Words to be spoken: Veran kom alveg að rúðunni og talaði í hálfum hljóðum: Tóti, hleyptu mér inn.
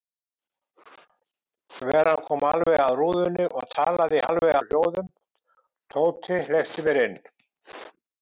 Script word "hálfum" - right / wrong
wrong